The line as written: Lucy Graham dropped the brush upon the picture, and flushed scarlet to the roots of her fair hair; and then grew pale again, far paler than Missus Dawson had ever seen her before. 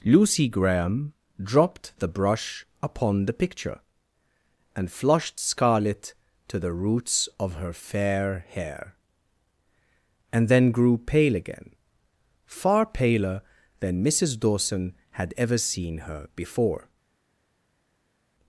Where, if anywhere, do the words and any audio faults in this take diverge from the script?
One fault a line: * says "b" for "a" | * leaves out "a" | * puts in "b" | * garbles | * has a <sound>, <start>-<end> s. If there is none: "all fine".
all fine